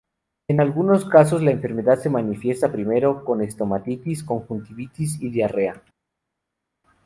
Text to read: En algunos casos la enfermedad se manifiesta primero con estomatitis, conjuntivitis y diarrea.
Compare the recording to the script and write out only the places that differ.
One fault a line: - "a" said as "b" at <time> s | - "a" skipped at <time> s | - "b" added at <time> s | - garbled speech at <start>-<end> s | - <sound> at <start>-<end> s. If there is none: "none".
none